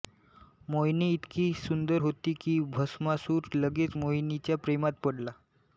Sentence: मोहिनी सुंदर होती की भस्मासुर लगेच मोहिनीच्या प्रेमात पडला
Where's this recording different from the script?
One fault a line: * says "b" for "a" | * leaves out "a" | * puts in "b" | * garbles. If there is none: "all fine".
* puts in "इतकी"